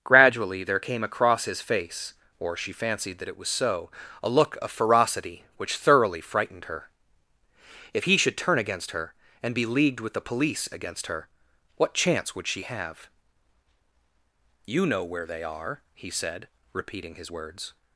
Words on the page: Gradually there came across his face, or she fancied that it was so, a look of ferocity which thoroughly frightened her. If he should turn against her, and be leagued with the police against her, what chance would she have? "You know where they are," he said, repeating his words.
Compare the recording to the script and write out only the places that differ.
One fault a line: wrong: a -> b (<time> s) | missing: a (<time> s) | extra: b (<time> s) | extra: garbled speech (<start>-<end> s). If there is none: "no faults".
no faults